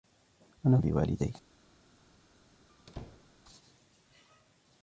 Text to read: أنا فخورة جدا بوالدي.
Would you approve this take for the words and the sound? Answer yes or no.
no